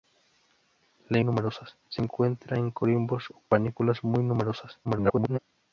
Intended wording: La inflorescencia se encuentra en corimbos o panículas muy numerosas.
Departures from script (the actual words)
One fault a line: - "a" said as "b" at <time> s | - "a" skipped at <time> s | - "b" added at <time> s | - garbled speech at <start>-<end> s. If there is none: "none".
- "inflorescencia" said as "numerosas" at 1.2 s
- garbled speech at 4.8-5.4 s